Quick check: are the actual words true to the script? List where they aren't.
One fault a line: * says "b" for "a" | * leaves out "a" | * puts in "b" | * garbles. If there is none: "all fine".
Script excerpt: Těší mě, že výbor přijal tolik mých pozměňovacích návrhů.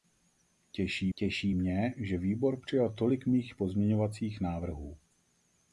* puts in "těší"